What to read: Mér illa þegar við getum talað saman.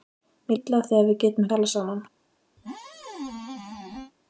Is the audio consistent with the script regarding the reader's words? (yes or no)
yes